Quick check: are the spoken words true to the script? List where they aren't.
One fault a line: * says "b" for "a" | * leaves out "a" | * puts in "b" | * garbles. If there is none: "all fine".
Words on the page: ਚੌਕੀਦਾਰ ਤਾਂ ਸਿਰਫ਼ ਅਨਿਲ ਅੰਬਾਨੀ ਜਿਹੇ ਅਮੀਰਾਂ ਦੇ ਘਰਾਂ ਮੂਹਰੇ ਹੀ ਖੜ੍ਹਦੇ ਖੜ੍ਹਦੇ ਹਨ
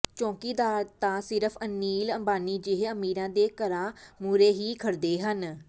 * leaves out "ਖੜ੍ਹਦੇ"